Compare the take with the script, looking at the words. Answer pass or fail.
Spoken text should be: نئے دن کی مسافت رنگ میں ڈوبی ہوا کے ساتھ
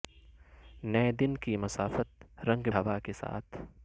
fail